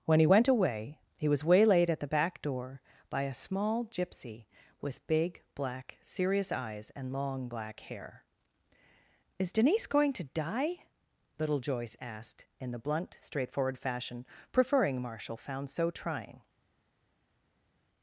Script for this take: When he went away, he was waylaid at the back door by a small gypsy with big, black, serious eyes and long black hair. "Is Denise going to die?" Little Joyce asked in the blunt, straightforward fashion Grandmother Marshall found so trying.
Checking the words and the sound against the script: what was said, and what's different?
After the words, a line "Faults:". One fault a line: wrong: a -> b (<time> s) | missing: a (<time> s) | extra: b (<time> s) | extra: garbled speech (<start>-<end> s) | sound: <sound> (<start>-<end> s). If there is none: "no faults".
When he went away, he was waylaid at the back door by a small gypsy with big, black, serious eyes and long black hair. "Is Denise going to die?" Little Joyce asked in the blunt, straightforward fashion Preferring Marshall found so trying.
Faults:
wrong: Grandmother -> Preferring (14.5 s)